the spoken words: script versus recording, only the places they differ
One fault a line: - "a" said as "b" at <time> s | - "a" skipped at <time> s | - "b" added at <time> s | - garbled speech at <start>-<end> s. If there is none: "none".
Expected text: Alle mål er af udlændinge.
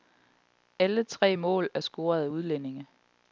- "tre" added at 1.0 s
- "scoret" added at 1.8 s